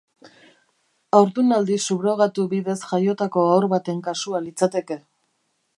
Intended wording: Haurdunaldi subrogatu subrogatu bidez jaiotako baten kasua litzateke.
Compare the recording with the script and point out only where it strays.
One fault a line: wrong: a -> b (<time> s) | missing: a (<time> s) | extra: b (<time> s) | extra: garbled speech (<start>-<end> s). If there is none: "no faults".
missing: subrogatu (2.5 s)
extra: haur (3.5 s)